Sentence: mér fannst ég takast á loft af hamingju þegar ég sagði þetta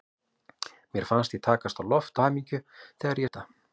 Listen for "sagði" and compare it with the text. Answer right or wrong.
wrong